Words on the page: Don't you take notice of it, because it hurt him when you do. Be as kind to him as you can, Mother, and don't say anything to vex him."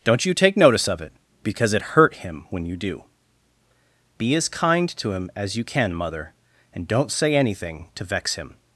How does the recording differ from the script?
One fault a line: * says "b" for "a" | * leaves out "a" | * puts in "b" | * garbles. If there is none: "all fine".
all fine